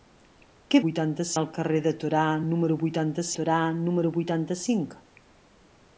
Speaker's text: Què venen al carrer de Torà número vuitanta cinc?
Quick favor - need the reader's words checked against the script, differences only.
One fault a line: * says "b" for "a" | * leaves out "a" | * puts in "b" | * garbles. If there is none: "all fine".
* says "vuitanta" for "venen"
* puts in "Torà número vuitanta"